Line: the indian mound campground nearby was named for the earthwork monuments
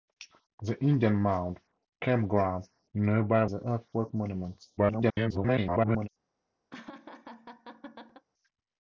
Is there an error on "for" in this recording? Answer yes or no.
yes